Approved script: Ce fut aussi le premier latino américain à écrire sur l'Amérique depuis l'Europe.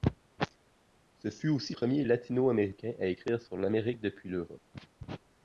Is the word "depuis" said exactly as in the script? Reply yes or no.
yes